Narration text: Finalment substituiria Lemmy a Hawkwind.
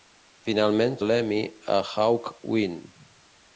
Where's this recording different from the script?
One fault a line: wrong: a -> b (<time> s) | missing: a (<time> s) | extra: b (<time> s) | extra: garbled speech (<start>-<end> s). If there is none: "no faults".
missing: substituiria (0.9 s)